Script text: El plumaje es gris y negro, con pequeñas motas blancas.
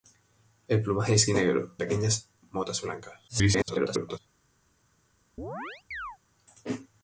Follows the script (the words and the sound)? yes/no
no